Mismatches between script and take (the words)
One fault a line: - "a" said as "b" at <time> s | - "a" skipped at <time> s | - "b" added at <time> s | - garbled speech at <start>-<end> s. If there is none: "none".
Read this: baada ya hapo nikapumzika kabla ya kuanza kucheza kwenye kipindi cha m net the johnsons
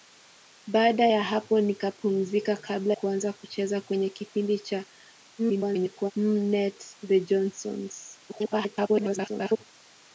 - "ya" skipped at 2.9 s
- garbled speech at 5.4-6.1 s
- garbled speech at 8.3-9.6 s